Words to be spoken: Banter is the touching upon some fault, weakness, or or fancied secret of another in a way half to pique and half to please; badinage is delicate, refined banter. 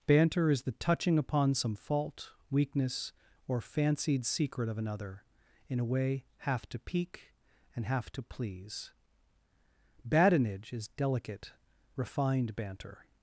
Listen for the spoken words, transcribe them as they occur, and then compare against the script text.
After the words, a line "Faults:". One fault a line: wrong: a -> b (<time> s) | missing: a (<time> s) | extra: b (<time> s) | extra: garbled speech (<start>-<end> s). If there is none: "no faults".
Banter is the touching upon some fault, weakness, or fancied secret of another in a way half to pique and half to please; badinage is delicate, refined banter.
Faults:
missing: or (3.6 s)